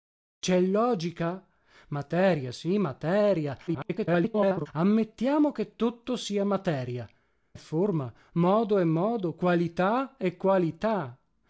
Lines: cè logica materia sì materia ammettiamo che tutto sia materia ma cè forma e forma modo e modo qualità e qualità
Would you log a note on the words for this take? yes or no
yes